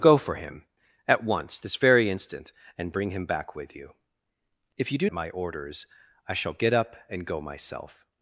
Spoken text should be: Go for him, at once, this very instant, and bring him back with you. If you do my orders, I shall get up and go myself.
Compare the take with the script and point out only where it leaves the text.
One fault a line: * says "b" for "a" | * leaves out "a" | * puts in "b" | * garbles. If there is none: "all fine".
all fine